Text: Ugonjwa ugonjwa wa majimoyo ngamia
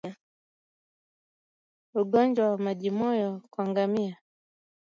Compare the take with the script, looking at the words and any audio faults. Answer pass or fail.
fail